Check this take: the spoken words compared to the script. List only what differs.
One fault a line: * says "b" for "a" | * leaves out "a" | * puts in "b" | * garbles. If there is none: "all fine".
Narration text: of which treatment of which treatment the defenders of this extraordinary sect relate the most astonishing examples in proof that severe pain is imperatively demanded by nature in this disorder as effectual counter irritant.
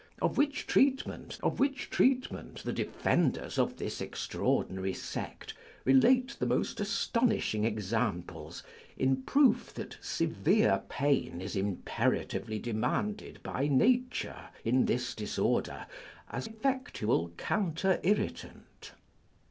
all fine